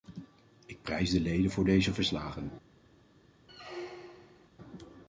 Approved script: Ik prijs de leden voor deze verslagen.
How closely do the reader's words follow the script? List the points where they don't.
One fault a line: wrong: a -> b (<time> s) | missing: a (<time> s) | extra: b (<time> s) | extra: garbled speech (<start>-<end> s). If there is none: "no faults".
no faults